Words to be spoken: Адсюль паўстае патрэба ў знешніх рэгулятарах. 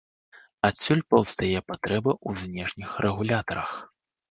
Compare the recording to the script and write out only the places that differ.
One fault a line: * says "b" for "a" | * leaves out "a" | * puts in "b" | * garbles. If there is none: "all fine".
all fine